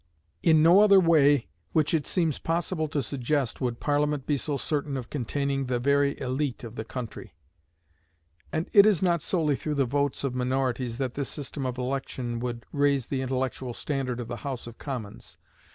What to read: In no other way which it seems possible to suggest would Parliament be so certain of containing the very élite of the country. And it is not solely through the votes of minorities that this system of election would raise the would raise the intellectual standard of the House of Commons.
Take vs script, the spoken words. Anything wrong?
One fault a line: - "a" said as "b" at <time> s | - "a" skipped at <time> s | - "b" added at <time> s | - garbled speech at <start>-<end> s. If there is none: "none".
- "would raise the" skipped at 13.2 s